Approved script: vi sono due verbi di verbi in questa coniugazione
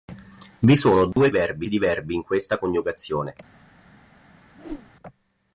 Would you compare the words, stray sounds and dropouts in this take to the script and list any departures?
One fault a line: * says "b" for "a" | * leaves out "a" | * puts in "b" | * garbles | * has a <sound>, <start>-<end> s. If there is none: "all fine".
* has a dropout, 1.1-1.2 s
* has a whoosh, 4.6-4.9 s